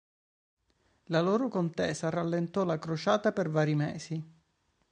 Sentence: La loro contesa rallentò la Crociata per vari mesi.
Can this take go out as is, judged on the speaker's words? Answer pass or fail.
pass